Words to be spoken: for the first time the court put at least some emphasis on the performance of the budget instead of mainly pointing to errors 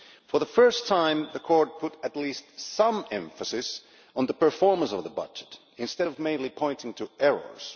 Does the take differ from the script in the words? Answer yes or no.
no